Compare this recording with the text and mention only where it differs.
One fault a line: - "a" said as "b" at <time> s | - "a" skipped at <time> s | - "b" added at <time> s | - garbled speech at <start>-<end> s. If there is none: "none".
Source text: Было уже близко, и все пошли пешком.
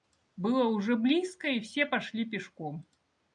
none